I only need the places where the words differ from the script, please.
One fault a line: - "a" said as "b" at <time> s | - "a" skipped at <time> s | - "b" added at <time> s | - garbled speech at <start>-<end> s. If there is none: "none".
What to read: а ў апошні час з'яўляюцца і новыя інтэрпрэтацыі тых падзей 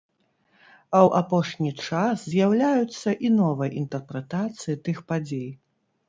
none